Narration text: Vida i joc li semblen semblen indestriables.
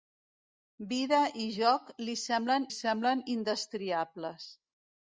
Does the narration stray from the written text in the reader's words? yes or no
no